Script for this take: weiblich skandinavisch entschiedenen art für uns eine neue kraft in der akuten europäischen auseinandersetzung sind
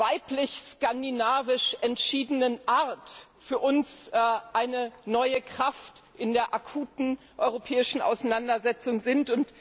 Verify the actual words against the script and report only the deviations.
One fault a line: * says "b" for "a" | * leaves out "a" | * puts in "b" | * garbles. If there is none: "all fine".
all fine